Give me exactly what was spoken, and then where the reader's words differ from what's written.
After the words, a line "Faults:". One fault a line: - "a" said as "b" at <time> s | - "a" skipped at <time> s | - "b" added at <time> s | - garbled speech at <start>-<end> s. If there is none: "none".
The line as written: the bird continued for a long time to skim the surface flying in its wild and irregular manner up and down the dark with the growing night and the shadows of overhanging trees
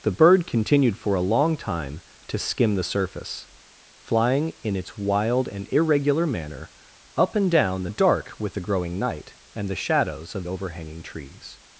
the bird continued for a long time to skim the surface flying in its wild and irregular manner up and down the dark with the growing night and the shadows of overhanging trees
Faults:
none